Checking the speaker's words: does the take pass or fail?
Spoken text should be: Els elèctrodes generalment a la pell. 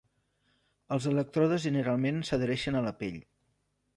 fail